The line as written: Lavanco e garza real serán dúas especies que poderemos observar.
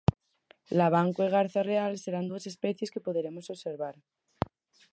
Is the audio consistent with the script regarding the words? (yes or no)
yes